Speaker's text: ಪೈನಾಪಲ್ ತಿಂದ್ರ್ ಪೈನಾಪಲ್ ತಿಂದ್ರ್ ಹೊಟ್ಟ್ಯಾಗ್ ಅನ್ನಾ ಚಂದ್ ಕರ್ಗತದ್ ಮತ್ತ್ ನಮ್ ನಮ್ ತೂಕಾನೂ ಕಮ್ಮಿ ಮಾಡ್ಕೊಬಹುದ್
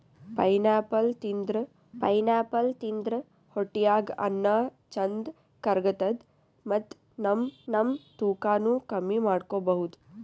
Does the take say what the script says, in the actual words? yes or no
yes